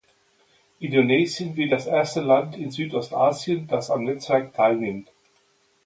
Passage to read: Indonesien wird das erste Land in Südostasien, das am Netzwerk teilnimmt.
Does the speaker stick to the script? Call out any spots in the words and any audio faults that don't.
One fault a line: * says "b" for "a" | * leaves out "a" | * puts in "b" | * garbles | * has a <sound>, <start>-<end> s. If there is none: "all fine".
all fine